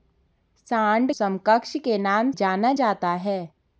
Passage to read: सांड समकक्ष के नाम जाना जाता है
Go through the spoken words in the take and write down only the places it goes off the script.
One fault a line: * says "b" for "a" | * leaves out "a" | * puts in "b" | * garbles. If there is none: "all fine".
all fine